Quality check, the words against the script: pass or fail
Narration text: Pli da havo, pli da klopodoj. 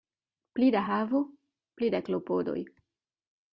pass